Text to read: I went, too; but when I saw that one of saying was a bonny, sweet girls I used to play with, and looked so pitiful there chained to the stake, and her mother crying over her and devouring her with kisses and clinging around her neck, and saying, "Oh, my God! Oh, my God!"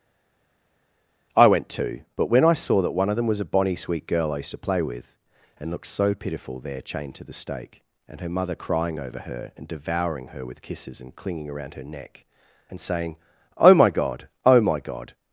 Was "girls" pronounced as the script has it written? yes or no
no